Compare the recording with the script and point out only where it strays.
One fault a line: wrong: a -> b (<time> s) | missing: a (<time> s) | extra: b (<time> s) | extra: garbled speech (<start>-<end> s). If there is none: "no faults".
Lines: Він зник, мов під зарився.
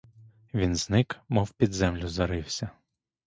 extra: землю (1.7 s)